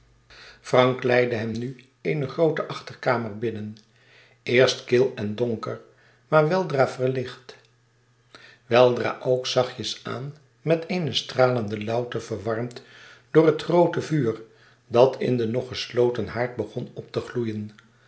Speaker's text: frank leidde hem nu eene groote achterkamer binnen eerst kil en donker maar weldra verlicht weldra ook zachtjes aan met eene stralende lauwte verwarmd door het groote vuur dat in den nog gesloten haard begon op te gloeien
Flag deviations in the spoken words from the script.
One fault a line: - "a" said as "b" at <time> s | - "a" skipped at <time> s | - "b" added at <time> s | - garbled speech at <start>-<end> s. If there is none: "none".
none